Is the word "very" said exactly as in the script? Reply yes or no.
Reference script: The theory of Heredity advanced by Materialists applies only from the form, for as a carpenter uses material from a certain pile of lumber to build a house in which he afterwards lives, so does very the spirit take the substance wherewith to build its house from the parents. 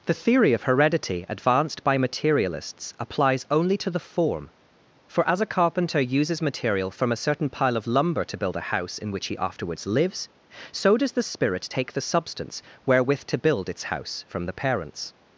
no